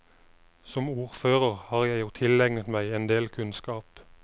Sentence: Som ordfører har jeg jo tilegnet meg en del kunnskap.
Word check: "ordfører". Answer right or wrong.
right